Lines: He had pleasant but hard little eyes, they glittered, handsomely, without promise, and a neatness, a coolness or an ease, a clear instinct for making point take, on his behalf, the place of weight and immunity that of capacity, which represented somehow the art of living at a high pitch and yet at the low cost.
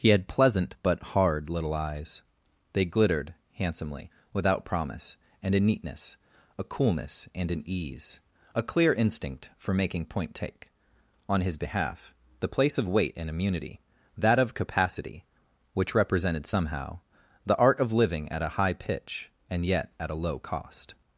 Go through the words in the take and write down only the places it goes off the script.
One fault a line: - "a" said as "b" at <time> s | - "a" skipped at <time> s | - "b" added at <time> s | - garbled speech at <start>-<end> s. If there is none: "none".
- "or" said as "and" at 7.3 s
- "the" said as "a" at 20.1 s